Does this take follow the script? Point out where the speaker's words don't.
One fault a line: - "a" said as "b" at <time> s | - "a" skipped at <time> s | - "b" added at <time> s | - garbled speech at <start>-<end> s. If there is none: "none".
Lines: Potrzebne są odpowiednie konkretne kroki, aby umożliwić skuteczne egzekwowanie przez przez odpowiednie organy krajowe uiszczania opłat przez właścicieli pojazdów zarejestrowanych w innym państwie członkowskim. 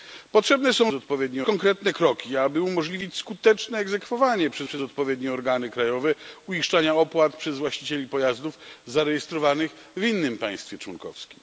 none